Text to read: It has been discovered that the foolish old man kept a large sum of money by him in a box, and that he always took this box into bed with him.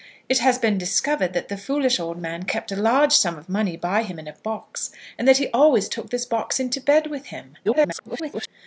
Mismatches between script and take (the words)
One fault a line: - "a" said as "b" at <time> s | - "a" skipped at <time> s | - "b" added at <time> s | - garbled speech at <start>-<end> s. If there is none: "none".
- garbled speech at 7.6-8.5 s